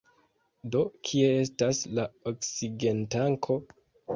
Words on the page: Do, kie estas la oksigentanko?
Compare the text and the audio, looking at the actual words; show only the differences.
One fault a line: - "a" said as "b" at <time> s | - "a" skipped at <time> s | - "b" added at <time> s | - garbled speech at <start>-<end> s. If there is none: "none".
none